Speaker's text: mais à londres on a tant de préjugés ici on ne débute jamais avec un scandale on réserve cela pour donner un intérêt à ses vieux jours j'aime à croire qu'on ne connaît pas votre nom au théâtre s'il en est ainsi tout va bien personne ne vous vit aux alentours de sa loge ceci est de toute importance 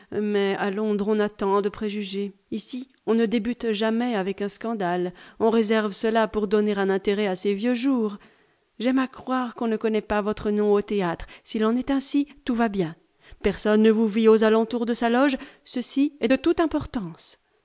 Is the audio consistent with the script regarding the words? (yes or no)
yes